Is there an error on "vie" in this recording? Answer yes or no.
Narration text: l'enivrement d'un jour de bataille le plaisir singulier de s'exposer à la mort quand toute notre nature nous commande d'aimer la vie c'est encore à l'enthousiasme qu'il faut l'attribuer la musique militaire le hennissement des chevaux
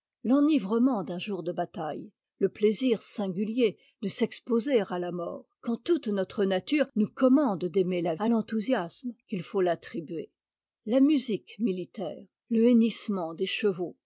yes